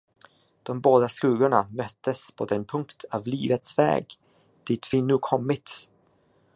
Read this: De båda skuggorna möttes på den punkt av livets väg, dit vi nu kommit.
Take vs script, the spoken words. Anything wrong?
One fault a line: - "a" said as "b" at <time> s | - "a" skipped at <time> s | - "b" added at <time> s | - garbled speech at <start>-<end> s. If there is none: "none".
none